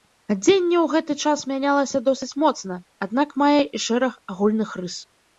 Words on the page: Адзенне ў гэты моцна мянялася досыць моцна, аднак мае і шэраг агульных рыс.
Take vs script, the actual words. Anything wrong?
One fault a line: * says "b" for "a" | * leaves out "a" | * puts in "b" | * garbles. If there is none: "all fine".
* says "час" for "моцна"